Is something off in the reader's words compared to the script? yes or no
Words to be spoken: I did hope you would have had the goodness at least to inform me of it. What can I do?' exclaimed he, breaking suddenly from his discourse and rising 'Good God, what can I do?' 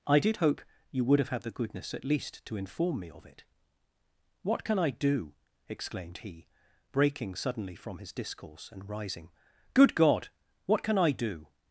no